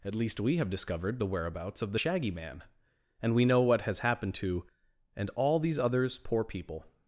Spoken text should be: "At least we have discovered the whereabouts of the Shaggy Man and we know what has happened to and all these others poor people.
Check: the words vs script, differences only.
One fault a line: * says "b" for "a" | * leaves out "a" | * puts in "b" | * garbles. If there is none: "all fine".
all fine